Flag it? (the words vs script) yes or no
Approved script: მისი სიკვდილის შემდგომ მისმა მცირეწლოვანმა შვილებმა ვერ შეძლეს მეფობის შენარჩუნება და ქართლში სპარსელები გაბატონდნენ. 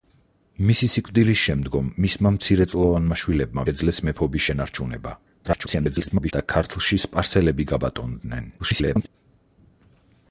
yes